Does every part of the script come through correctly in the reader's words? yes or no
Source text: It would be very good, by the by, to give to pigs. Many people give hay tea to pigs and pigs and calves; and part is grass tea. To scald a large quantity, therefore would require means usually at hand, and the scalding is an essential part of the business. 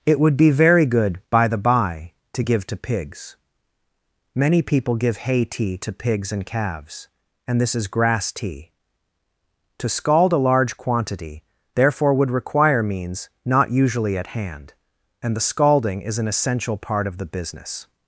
no